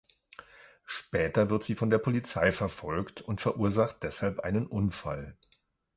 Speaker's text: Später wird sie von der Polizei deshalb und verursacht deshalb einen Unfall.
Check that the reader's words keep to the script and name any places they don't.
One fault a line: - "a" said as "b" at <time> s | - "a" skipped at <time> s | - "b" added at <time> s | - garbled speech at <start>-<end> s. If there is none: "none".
- "deshalb" said as "verfolgt" at 2.5 s